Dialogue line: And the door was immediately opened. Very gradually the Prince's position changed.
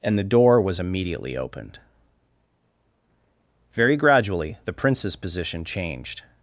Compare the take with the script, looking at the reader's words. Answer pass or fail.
pass